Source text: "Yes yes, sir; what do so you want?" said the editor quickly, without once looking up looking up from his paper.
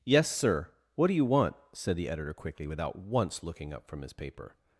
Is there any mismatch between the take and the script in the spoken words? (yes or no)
yes